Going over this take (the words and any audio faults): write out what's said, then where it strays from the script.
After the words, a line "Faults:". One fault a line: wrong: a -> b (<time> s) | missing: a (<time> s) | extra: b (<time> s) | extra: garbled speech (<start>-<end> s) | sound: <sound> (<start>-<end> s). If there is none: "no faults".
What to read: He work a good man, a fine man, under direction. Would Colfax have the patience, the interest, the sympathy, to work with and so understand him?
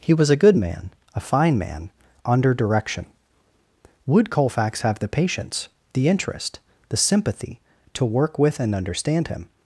He was a good man, a fine man, under direction. Would Colfax have the patience, the interest, the sympathy, to work with and understand him?
Faults:
wrong: work -> was (0.1 s)
missing: so (8.7 s)